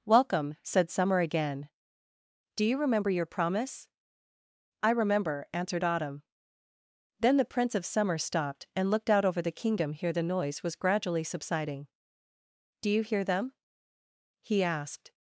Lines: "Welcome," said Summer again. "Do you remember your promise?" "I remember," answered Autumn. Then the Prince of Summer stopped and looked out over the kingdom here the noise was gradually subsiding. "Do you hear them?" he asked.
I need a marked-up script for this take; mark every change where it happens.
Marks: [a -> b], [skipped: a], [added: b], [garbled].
"Welcome," said Summer again. "Do you remember your promise?" "I remember," answered Autumn. Then the Prince of Summer stopped and looked out over the kingdom here the noise was gradually subsiding. "Do you hear them?" he asked.